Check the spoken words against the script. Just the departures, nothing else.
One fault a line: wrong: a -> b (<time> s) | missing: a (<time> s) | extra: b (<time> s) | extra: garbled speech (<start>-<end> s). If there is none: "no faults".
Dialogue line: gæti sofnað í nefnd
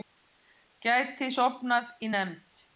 no faults